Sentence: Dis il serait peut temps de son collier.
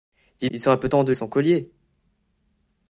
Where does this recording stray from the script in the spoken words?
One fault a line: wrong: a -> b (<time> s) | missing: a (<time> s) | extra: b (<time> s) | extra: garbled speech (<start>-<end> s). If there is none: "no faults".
no faults